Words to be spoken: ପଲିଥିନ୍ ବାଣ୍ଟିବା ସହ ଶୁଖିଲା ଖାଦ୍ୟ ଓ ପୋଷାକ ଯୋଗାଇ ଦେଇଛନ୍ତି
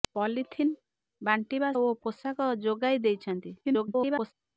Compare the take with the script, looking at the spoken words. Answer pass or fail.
fail